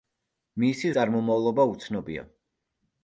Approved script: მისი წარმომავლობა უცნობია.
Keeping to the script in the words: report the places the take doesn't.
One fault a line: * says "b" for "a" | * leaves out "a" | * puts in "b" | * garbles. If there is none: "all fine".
all fine